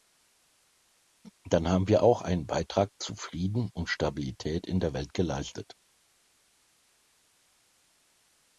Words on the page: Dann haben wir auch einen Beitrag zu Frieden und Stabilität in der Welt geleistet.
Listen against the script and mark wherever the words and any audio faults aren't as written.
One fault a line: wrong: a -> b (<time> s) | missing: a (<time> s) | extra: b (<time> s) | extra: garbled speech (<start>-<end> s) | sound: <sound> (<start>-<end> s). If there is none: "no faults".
no faults